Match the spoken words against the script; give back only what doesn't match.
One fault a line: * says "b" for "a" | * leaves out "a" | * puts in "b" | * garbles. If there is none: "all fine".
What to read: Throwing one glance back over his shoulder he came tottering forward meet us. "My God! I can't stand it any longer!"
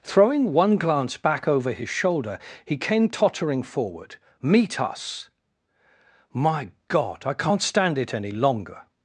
all fine